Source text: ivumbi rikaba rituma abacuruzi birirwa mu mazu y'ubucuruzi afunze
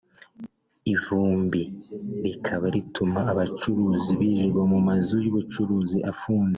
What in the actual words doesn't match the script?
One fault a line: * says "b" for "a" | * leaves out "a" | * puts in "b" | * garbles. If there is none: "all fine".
all fine